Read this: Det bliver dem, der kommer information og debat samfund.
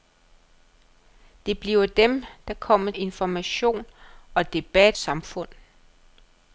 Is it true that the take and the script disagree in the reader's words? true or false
false